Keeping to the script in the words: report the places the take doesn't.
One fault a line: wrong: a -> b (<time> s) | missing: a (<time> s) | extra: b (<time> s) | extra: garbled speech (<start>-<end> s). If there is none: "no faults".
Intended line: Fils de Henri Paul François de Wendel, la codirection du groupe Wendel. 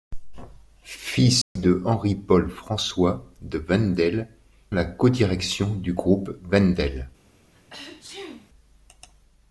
no faults